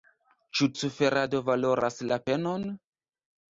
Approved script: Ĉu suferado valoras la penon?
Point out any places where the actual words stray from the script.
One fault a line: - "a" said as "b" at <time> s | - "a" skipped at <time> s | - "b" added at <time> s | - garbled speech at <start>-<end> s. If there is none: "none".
none